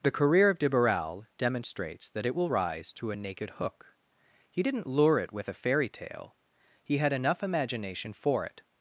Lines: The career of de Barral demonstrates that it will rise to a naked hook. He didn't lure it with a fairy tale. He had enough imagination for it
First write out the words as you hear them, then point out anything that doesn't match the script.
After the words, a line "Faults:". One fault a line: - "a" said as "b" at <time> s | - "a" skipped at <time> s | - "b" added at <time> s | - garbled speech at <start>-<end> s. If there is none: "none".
The career of de Barral demonstrates that it will rise to a naked hook. He didn't lure it with a fairy tale. He had enough imagination for it
Faults:
none